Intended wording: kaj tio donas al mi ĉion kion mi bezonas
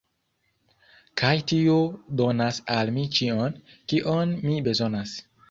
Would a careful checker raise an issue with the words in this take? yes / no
no